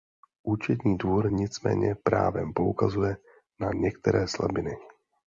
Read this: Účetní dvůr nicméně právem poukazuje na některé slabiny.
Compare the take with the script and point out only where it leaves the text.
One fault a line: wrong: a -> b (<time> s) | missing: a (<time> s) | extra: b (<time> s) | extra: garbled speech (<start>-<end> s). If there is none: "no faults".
no faults